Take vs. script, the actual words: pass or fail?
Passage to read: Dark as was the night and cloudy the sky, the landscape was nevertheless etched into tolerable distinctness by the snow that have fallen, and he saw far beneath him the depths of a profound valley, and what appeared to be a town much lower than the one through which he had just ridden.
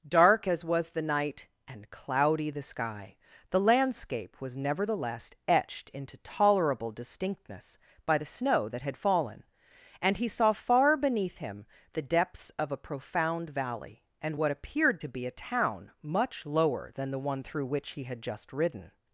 fail